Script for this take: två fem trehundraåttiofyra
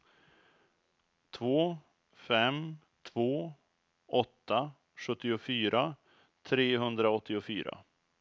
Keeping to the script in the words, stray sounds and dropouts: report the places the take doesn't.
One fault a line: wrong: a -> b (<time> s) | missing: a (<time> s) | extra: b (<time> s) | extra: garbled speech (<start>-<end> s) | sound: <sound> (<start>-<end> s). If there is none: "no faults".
extra: två åtta sjuttiofyra (3.0 s)